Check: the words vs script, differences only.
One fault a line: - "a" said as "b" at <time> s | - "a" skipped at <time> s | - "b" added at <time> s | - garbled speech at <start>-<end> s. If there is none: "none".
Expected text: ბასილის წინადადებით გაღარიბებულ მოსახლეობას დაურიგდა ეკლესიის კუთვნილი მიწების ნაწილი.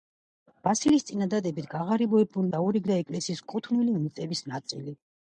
- "მოსახლეობას" skipped at 2.5 s